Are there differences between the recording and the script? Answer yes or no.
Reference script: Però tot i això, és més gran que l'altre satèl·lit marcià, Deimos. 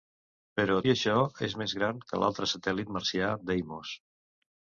yes